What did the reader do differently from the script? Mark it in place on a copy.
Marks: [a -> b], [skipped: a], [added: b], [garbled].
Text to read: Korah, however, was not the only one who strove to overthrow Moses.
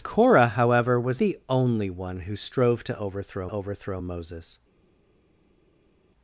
Korah, however, was [skipped: not] the only one who strove to overthrow [added: overthrow] Moses.